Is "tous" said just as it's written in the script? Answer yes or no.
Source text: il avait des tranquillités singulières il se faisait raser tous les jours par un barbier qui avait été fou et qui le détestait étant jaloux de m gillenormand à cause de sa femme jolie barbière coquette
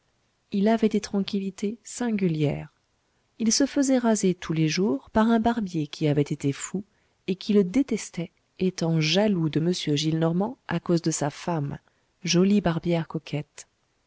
yes